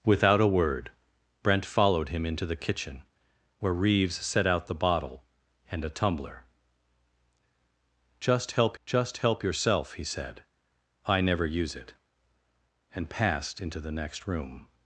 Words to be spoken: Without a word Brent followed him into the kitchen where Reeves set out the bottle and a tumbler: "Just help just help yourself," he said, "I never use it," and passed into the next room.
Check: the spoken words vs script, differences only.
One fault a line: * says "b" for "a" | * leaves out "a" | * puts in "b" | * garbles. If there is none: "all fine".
all fine